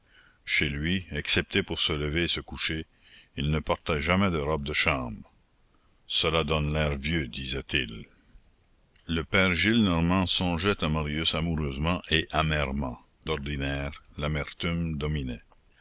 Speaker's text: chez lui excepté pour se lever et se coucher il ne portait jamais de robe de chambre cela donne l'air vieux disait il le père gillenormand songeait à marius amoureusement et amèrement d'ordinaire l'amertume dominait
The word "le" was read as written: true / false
true